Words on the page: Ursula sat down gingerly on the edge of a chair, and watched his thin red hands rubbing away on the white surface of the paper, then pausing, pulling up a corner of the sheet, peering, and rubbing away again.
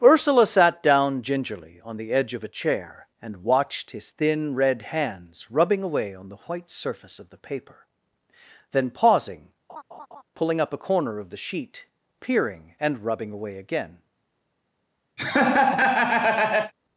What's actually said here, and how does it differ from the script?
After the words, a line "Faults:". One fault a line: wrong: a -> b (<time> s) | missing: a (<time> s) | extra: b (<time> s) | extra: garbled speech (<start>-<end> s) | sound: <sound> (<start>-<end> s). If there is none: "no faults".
Ursula sat down gingerly on the edge of a chair, and watched his thin red hands rubbing away on the white surface of the paper, then pausing, pulling up a corner of the sheet, peering, and rubbing away again.
Faults:
sound: laugh (9.7-10.2 s)
sound: laugh (15.2-16.7 s)